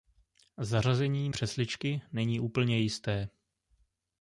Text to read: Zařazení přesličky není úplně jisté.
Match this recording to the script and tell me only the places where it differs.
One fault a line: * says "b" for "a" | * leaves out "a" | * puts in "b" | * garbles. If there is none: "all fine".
all fine